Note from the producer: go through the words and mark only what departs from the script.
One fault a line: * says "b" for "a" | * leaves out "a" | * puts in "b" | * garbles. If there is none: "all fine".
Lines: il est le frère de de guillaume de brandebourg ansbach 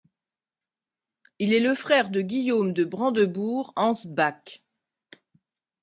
* leaves out "de"